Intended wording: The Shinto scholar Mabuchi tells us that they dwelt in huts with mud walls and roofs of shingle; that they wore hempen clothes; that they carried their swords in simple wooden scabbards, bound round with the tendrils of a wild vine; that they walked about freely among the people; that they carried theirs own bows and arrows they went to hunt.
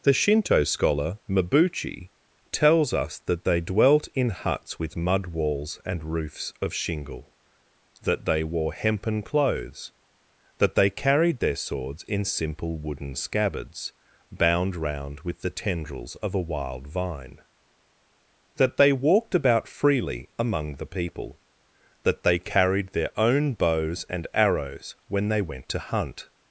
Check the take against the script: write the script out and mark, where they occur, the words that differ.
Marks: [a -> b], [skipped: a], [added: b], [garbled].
The Shinto scholar Mabuchi tells us that they dwelt in huts with mud walls and roofs of shingle; that they wore hempen clothes; that they carried their swords in simple wooden scabbards, bound round with the tendrils of a wild vine; that they walked about freely among the people; that they carried [theirs -> their] own bows and arrows [added: when] they went to hunt.